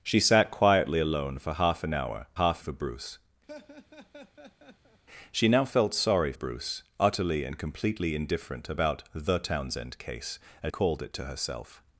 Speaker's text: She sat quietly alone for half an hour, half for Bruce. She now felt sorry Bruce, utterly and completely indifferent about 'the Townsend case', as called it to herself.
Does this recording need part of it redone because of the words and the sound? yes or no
yes